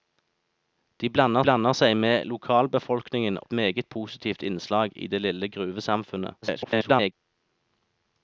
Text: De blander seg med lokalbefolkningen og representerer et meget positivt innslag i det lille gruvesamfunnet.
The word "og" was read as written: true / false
false